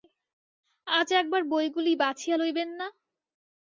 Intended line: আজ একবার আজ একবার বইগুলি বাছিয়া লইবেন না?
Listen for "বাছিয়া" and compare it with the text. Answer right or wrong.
right